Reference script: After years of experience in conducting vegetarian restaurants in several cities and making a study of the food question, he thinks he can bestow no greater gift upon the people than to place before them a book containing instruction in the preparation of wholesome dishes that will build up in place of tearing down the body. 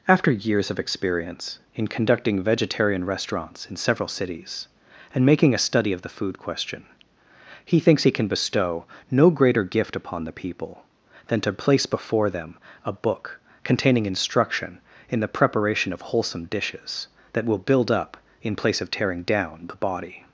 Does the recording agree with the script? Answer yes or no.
yes